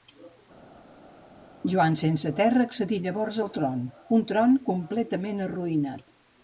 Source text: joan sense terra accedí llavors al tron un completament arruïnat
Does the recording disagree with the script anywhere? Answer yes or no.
yes